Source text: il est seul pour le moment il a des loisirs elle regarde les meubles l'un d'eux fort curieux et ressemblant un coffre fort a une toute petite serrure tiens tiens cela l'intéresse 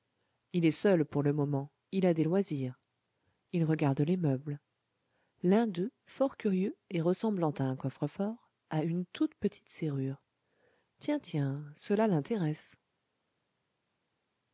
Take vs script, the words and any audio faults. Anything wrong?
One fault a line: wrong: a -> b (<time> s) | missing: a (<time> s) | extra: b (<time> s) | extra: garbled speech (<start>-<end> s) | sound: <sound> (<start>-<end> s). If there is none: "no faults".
wrong: elle -> il (3.5 s)
extra: à (7.5 s)